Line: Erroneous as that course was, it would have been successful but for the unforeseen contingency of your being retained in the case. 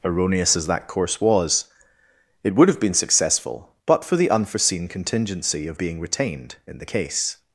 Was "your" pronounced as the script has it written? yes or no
no